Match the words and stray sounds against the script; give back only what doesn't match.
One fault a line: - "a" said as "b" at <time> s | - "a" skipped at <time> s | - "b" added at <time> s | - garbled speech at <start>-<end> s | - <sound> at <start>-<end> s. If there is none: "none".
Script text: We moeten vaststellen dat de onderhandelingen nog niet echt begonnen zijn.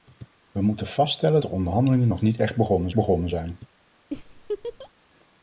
- "dat" skipped at 1.4 s
- "begonnen" added at 2.9 s
- laugh at 4.1-4.9 s